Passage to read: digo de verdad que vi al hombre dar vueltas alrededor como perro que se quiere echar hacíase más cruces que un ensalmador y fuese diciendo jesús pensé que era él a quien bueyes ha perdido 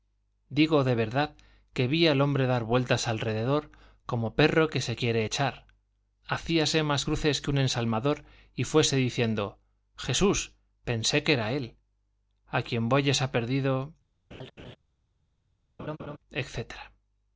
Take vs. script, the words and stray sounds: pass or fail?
fail